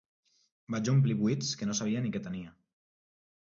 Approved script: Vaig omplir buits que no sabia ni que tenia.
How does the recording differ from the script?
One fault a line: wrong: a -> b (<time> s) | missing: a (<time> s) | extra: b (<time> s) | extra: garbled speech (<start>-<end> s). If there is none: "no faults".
no faults